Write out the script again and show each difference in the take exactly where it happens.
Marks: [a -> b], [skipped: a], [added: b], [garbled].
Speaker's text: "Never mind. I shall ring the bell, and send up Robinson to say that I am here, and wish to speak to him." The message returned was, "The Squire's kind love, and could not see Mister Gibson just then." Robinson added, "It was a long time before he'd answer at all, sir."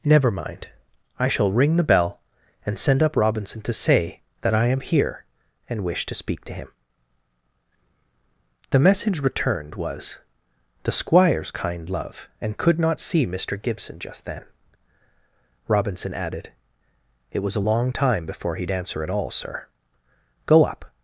"Never mind. I shall ring the bell, and send up Robinson to say that I am here, and wish to speak to him." The message returned was, "The Squire's kind love, and could not see Mister Gibson just then." Robinson added, "It was a long time before he'd answer at all, sir." [added: Go up]